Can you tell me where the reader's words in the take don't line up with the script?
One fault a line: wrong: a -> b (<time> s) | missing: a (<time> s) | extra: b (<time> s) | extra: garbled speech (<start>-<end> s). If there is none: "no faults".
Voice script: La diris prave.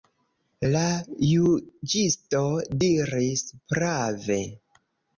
extra: juĝisto (1.3 s)